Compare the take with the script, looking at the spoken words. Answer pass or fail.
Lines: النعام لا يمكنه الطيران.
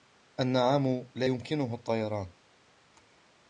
pass